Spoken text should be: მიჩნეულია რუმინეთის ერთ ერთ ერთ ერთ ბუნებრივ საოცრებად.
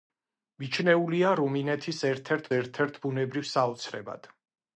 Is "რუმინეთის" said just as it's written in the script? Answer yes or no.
yes